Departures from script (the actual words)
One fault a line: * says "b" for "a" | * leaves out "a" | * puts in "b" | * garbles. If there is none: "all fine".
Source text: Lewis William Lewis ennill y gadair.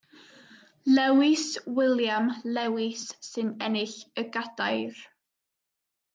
* puts in "sy'n"